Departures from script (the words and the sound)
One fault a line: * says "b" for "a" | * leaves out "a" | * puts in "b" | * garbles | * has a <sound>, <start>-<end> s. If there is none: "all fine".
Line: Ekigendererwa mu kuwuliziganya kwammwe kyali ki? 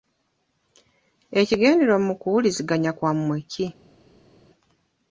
* leaves out "kyali"